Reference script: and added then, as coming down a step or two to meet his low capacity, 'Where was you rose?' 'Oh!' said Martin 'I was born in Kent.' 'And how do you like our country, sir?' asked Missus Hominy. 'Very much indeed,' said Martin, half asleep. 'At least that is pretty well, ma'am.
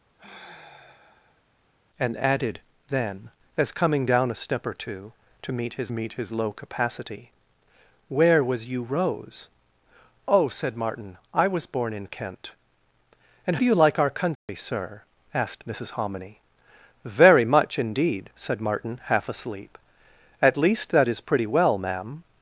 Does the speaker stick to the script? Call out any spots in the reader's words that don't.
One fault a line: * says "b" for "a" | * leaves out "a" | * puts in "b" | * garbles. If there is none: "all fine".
* puts in "meet his"
* leaves out "how"